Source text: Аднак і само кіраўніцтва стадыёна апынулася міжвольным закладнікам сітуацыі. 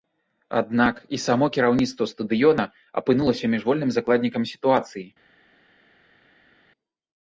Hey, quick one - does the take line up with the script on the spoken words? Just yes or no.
yes